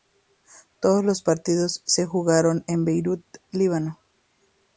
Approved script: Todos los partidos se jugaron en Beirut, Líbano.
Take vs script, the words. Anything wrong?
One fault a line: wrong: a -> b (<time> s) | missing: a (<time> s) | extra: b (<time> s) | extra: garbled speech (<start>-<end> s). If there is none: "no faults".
no faults